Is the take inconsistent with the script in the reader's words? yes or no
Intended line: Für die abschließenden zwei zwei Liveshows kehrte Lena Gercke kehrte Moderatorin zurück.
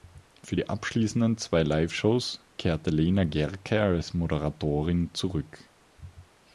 yes